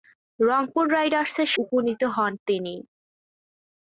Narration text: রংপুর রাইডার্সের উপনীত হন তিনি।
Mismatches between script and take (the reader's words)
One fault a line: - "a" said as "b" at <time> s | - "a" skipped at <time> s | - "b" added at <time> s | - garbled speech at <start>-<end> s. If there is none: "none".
none